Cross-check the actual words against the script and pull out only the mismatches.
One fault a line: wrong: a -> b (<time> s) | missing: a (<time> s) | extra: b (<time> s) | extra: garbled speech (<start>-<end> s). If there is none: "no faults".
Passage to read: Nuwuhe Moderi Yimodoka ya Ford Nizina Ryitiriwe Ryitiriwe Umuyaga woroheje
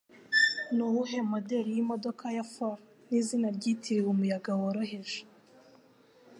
missing: Ryitiriwe (4.1 s)